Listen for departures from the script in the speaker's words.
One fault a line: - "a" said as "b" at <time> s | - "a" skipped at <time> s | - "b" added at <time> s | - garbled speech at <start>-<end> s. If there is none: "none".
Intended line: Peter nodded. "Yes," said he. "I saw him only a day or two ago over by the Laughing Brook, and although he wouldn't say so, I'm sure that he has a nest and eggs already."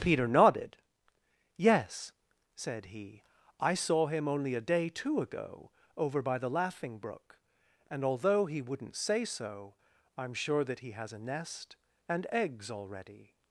- "or" skipped at 4.9 s